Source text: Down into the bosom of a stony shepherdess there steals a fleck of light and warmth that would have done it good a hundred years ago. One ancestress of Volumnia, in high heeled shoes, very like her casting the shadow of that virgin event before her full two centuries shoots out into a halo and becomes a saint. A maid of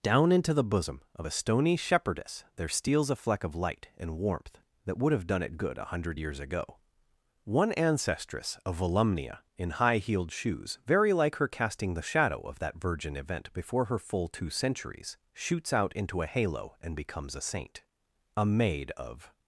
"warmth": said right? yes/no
yes